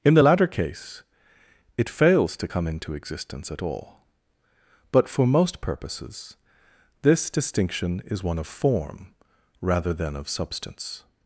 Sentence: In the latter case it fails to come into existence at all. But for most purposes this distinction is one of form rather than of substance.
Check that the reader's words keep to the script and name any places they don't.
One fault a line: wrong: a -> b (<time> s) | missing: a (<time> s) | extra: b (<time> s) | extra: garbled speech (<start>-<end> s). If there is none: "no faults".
no faults